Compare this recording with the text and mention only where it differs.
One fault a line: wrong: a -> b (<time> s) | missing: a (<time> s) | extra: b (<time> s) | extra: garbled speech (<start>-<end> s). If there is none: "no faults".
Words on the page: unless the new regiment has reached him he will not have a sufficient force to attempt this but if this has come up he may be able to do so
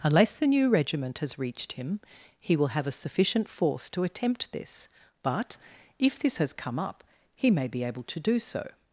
missing: not (2.7 s)